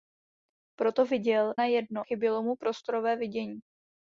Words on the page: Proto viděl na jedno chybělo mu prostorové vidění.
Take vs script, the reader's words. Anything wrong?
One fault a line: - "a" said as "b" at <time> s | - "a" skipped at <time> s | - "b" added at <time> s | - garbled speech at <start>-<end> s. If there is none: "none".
none